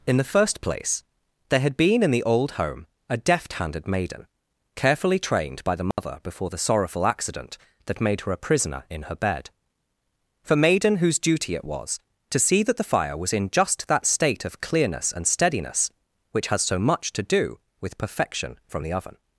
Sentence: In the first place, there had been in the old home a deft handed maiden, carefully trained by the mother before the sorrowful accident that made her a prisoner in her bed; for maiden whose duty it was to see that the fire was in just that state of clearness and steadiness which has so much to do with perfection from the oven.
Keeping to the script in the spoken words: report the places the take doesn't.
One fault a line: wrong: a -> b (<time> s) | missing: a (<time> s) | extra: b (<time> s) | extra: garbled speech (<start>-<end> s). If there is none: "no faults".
no faults